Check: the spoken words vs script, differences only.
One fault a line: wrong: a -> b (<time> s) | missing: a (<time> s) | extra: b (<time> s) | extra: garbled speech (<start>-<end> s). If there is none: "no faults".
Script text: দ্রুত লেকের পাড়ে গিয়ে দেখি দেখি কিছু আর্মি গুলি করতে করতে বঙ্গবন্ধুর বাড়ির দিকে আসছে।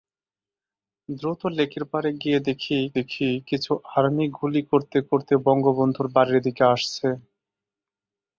no faults